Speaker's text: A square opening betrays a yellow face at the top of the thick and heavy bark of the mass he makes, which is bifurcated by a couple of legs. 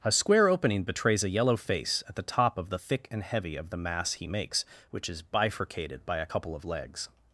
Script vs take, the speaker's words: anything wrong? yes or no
yes